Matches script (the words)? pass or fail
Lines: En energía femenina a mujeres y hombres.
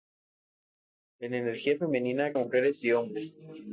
pass